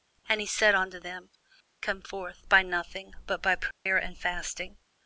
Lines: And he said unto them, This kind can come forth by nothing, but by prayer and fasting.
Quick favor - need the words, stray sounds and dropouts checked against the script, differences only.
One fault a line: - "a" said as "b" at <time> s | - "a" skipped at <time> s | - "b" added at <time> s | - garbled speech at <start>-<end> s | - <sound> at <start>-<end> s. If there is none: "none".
- "This kind can" skipped at 1.3 s
- dropout at 3.7-3.9 s